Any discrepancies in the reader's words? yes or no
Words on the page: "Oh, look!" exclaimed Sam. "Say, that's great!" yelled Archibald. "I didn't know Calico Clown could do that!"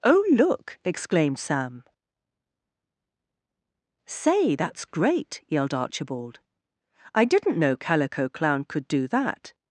no